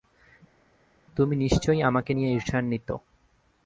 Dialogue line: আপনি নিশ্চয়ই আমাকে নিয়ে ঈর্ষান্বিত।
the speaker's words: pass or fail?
fail